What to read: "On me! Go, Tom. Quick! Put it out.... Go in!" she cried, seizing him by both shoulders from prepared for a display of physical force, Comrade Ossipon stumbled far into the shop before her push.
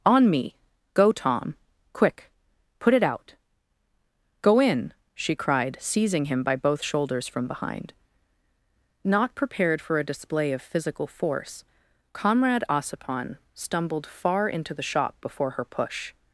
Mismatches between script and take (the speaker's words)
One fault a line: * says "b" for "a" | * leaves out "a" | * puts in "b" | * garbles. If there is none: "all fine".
* puts in "behind Not"